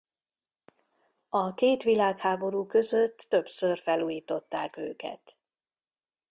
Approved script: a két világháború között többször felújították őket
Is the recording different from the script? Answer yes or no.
no